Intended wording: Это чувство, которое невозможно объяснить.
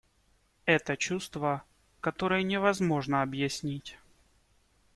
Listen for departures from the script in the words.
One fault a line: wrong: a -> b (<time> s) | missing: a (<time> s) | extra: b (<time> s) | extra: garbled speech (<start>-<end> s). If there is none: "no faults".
no faults